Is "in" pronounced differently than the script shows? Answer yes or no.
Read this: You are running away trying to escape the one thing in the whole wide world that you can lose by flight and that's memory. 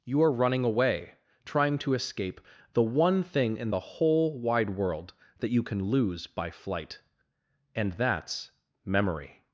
no